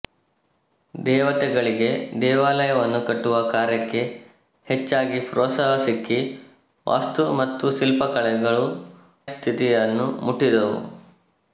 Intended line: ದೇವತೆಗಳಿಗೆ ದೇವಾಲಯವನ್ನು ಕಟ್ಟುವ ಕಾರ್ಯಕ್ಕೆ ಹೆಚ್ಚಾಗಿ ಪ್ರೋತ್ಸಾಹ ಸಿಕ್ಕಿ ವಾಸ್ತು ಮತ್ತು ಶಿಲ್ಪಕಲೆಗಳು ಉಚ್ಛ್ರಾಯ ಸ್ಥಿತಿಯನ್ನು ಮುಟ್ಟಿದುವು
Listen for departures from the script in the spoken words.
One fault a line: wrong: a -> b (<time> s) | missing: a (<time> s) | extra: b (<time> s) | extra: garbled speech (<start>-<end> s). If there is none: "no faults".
missing: ಉಚ್ಛ್ರಾಯ (8.7 s)